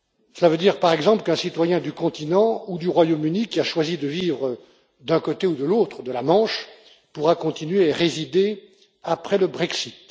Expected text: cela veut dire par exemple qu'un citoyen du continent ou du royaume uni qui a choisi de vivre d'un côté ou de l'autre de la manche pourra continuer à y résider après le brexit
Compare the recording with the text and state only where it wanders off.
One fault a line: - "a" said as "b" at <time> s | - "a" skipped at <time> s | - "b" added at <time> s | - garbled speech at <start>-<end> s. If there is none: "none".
none